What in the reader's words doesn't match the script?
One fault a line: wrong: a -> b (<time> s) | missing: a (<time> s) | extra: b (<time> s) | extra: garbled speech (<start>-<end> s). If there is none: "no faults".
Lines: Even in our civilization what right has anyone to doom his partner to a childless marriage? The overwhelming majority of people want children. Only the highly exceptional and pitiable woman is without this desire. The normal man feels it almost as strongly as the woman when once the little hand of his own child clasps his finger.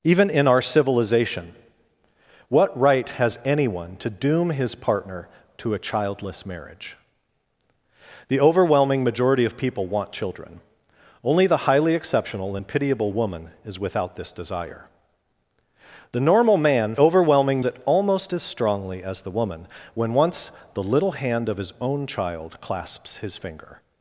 wrong: feels -> overwhelming (17.0 s)